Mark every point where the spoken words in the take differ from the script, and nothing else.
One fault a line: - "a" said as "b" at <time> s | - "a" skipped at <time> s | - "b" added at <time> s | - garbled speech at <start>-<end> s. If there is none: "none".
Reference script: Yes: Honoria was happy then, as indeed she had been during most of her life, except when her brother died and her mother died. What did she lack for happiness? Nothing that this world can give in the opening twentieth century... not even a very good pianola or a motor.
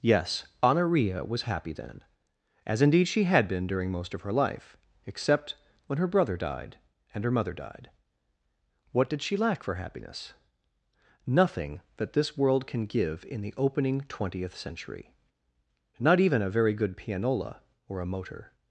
none